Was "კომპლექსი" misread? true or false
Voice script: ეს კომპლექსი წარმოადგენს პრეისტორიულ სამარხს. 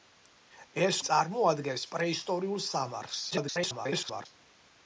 true